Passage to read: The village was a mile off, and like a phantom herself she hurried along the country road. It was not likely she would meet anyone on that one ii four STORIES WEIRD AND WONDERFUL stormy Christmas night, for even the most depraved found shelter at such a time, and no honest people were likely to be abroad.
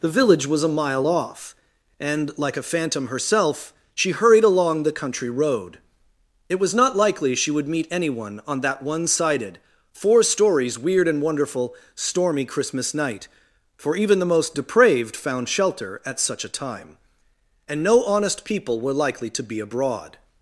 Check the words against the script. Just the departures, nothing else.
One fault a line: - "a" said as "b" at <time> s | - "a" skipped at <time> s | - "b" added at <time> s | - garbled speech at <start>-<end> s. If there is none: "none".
- "ii" said as "sided" at 9.1 s